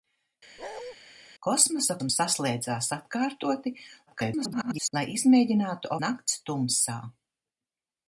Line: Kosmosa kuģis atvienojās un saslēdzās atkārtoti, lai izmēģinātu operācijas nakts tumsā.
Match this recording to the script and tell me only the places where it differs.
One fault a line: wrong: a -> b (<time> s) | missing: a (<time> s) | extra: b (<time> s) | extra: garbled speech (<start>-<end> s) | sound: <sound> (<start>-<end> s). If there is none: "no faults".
sound: bark (0.6-0.9 s)
missing: kuģis atvienojās (1.9 s)
extra: garbled speech (4.1-4.9 s)
missing: operācijas (5.9 s)